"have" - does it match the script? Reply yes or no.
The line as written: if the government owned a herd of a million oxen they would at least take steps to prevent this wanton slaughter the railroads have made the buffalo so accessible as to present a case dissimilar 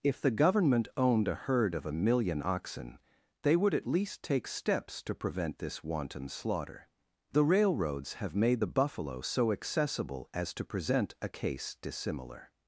yes